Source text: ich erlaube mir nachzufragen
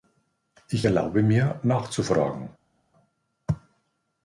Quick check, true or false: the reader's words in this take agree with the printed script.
true